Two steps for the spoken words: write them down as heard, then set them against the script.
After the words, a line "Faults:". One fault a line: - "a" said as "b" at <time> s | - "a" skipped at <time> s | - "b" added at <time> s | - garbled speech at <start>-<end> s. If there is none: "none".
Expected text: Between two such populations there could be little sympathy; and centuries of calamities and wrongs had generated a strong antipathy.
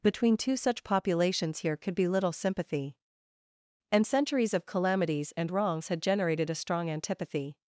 Between two such populations here could be little sympathy; and centuries of calamities and wrongs had generated a strong antipathy.
Faults:
- "there" said as "here" at 1.6 s